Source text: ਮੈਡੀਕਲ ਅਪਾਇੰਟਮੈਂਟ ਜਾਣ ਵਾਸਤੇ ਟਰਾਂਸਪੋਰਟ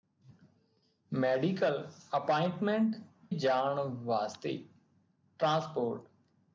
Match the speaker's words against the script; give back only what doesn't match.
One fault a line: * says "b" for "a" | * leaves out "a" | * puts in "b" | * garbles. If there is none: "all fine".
all fine